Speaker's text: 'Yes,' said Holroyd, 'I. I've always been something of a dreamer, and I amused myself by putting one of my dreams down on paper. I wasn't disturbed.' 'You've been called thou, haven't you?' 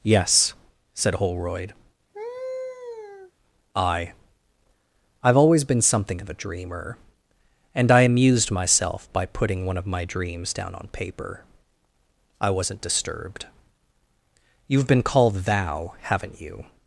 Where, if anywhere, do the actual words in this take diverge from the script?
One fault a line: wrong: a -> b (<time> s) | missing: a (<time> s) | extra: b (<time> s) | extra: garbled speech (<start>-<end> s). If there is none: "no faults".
no faults